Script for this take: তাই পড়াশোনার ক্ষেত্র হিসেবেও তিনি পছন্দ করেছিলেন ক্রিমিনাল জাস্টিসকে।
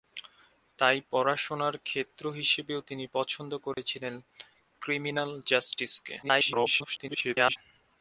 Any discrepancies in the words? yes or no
yes